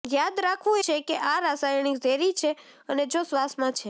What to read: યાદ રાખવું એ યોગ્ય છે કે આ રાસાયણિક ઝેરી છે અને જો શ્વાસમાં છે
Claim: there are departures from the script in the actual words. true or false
true